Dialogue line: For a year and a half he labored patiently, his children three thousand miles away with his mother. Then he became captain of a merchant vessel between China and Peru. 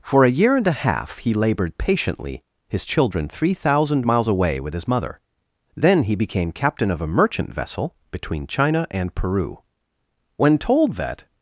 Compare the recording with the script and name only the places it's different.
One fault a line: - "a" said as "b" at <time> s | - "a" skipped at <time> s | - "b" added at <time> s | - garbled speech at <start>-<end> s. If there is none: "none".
- "When told that" added at 10.4 s